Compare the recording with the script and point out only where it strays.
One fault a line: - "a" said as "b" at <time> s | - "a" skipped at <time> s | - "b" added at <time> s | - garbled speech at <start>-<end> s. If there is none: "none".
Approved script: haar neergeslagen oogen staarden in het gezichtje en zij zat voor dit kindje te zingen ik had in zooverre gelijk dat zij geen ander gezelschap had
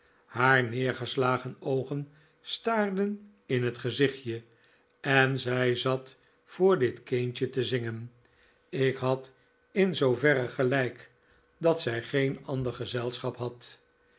none